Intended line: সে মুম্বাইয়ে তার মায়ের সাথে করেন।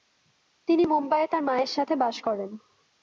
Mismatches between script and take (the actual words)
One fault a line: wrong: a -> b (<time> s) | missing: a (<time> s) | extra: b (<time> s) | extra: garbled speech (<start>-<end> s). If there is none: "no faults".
wrong: সে -> তিনি (0.7 s)
extra: বাস (2.0 s)